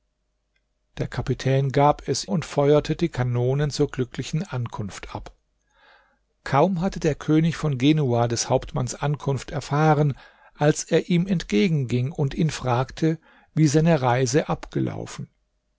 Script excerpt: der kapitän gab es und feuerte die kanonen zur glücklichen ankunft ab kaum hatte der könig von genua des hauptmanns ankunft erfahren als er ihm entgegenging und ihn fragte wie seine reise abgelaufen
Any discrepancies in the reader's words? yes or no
no